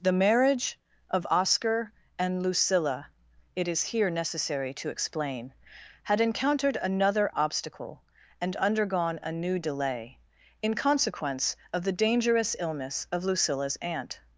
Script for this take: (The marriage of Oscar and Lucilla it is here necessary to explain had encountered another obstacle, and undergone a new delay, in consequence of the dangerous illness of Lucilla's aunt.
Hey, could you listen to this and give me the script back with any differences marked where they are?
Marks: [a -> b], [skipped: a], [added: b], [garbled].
(The marriage of Oscar and Lucilla it is here necessary to explain had encountered another obstacle, and undergone a new delay, in consequence of the dangerous illness of Lucilla's aunt.